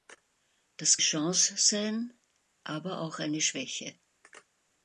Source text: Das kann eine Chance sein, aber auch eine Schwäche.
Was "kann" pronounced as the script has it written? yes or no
no